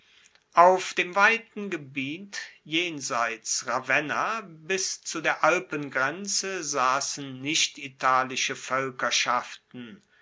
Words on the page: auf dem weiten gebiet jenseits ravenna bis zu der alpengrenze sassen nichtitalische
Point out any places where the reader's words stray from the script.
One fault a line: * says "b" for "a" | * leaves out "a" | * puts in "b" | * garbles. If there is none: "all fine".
all fine